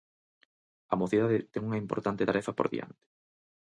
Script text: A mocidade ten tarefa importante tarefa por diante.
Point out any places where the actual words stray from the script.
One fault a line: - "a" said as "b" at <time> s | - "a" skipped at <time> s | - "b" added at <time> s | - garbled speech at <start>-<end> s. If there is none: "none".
- "tarefa" said as "unha" at 1.7 s